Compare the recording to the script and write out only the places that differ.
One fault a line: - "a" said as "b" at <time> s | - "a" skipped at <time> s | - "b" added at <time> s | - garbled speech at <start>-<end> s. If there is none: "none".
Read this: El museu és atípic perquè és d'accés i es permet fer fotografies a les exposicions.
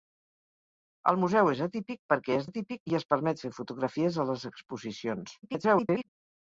- "d'accés" said as "atípic" at 2.5 s
- garbled speech at 5.4-6.1 s